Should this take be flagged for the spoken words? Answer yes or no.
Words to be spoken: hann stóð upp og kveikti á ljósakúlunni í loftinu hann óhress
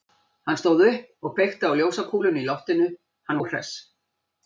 no